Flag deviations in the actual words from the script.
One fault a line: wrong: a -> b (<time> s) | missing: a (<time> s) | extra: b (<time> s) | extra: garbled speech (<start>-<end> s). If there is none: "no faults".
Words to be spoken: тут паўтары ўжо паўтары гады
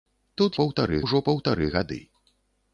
no faults